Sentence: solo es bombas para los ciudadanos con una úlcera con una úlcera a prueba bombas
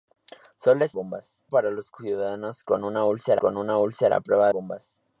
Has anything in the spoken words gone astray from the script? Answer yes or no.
no